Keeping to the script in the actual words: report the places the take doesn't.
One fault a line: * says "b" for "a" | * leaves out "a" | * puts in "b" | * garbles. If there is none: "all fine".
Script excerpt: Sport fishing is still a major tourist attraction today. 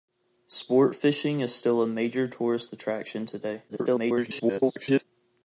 * garbles